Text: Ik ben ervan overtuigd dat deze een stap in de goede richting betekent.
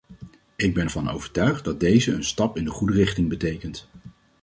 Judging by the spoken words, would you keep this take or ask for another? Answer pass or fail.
pass